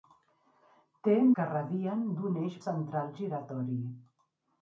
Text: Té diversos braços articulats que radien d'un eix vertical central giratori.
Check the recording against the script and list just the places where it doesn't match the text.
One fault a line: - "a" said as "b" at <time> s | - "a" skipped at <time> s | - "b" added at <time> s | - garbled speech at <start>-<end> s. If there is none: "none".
- "diversos braços articulats" skipped at 1.1 s
- "vertical" skipped at 2.6 s